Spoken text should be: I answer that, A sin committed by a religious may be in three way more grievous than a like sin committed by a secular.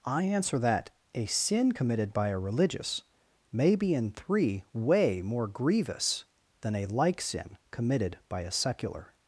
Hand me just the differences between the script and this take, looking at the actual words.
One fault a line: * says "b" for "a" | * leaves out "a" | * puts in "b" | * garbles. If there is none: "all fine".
all fine